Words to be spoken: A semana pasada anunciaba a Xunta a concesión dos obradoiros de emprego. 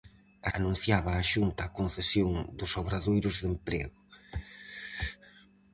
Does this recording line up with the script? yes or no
no